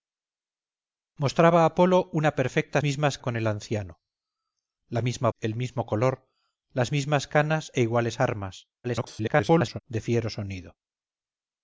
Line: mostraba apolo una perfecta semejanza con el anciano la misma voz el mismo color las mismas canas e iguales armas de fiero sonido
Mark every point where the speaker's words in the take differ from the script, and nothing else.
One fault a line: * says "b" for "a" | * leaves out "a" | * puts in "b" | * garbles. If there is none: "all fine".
* says "mismas" for "semejanza"
* leaves out "voz"
* garbles